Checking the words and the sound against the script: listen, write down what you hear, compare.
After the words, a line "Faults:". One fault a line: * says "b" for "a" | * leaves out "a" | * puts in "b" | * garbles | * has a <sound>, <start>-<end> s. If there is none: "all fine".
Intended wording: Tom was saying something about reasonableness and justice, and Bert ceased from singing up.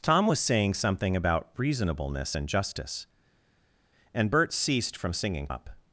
Tom was saying something about reasonableness and justice, and Bert ceased from singing up.
Faults:
all fine